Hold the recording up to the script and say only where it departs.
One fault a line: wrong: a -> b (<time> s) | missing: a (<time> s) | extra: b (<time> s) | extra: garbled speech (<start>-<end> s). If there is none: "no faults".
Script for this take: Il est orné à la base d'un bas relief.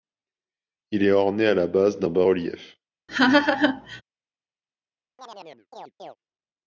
no faults